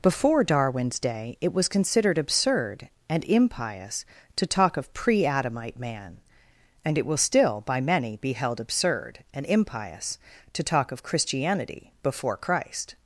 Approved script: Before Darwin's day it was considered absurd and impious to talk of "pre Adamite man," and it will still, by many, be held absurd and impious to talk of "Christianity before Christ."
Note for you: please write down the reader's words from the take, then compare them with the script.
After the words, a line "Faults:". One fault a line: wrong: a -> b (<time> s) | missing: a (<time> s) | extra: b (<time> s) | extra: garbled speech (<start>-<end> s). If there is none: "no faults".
Before Darwin's day it was considered absurd and impious to talk of "pre Adamite man," and it will still, by many, be held absurd and impious to talk of "Christianity before Christ."
Faults:
no faults